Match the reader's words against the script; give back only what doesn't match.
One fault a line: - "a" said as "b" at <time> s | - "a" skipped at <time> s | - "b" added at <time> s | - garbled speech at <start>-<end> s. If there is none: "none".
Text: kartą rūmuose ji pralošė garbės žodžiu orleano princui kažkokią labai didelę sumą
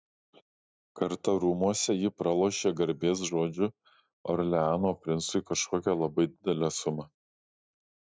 none